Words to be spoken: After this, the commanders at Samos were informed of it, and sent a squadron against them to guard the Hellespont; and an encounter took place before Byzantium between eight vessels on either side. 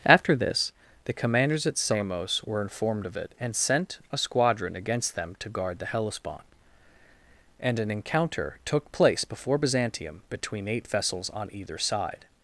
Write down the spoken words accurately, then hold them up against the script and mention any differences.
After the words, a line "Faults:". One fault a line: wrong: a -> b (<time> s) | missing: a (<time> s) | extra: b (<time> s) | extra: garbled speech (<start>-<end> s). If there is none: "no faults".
After this, the commanders at Samos were informed of it, and sent a squadron against them to guard the Hellespont; and an encounter took place before Byzantium between eight vessels on either side.
Faults:
no faults